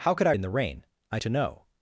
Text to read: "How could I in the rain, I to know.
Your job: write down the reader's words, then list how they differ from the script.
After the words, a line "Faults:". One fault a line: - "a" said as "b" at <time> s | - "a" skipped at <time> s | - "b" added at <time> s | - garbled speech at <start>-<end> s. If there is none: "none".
"How could I in the rain, I to know.
Faults:
none